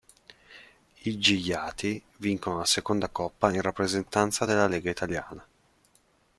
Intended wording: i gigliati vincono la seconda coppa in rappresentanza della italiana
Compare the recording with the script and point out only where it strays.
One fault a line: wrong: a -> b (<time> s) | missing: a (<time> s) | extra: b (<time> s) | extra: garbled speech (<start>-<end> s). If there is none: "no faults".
extra: lega (4.7 s)